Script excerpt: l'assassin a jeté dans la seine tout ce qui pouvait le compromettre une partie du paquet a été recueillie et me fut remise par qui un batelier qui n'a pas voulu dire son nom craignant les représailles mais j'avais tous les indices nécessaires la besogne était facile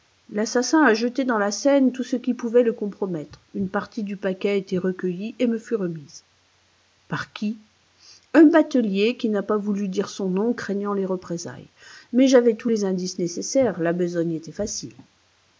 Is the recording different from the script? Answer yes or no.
no